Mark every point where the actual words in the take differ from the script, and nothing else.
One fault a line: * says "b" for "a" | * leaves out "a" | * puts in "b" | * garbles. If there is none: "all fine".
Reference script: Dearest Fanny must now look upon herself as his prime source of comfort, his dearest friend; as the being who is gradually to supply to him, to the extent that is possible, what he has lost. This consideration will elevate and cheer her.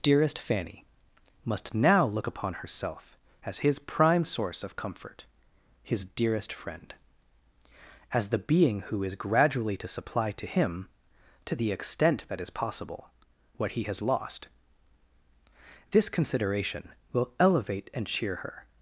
all fine